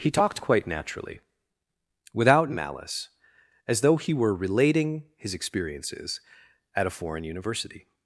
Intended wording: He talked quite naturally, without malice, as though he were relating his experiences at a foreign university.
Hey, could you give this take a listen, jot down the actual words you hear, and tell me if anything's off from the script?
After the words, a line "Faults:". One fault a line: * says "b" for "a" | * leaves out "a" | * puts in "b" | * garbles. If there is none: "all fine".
He talked quite naturally, without malice, as though he were relating his experiences at a foreign university.
Faults:
all fine